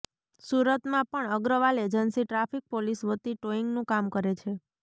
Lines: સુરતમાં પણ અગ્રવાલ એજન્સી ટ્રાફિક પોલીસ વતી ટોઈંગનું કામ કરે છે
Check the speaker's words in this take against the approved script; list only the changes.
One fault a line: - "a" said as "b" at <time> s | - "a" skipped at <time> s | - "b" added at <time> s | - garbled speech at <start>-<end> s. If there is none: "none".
none